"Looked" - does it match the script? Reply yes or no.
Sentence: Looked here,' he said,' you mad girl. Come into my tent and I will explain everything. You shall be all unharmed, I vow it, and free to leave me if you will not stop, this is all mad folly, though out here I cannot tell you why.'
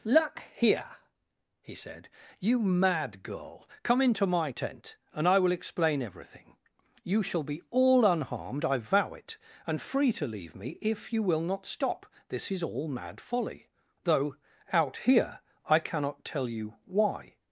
no